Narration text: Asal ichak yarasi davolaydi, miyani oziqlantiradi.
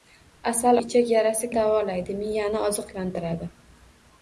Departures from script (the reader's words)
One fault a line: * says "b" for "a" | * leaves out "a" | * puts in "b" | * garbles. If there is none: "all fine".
all fine